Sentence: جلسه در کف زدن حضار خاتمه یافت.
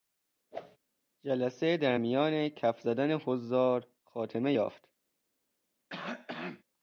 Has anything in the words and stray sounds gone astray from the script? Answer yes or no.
yes